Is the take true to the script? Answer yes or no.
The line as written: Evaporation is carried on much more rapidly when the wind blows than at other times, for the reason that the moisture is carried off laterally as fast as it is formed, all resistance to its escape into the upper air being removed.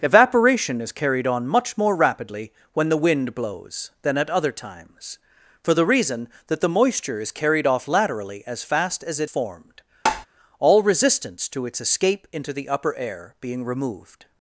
no